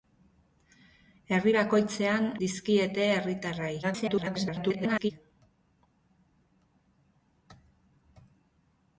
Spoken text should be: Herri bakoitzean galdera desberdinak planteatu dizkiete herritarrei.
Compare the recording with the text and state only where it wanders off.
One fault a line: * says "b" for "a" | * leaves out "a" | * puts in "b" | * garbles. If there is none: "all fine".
* leaves out "galdera desberdinak planteatu"
* garbles